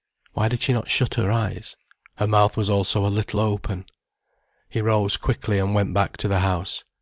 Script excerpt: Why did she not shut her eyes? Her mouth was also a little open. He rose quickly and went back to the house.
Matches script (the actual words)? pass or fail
pass